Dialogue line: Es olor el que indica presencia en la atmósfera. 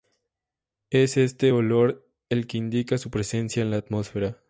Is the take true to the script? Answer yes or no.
no